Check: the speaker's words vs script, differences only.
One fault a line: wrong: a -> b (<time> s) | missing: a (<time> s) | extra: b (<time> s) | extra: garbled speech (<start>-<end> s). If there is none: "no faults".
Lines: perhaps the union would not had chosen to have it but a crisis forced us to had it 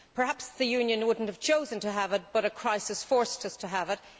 wrong: had -> have (1.3 s)
wrong: had -> have (3.7 s)